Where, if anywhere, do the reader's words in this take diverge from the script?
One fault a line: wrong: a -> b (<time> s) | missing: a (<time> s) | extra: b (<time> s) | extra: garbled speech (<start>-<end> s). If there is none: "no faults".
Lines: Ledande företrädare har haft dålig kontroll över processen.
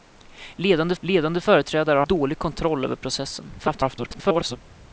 extra: ledande (1.0 s)
missing: haft (2.1 s)
extra: garbled speech (3.6-4.6 s)